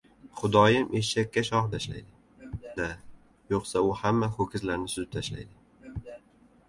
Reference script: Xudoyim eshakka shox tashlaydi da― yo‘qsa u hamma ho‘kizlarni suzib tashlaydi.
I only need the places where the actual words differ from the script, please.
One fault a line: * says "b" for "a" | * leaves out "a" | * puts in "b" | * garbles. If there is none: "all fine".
all fine